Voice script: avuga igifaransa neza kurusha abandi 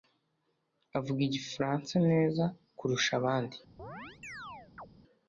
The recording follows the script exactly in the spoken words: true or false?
true